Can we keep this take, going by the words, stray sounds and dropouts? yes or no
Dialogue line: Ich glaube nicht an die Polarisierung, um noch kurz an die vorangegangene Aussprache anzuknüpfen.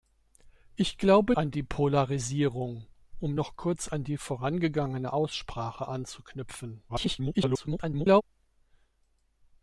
no